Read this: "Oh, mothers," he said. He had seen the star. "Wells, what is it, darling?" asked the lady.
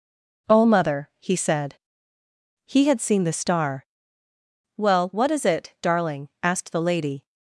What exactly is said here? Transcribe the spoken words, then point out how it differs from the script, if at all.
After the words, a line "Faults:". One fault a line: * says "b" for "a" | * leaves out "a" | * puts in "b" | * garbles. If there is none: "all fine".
"Oh, mother," he said. He had seen the star. "Well, what is it, darling?" asked the lady.
Faults:
* says "mother" for "mothers"
* says "Well" for "Wells"